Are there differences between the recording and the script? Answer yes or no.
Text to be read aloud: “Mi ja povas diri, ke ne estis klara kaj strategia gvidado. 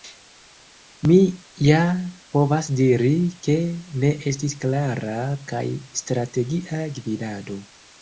no